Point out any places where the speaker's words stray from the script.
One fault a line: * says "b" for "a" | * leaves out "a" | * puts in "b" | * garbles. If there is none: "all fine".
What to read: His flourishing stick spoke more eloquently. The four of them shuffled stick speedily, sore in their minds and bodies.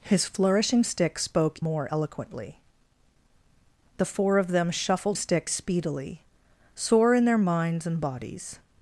all fine